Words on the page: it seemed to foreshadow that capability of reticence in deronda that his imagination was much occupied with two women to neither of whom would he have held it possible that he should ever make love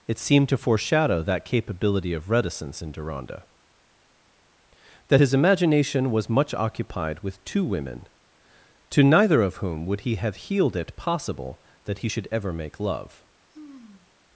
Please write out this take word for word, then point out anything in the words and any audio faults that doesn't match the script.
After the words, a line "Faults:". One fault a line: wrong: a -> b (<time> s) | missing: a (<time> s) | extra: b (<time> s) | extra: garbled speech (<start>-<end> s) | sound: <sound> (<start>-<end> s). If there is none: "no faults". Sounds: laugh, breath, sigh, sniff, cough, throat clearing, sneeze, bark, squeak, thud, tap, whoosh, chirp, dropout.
it seemed to foreshadow that capability of reticence in deronda that his imagination was much occupied with two women to neither of whom would he have healed it possible that he should ever make love
Faults:
wrong: held -> healed (10.3 s)
sound: sigh (13.5-14.2 s)